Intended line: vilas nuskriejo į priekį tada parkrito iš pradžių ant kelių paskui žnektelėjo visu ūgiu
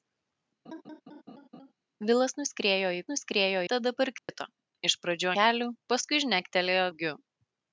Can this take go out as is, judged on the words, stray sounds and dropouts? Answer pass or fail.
fail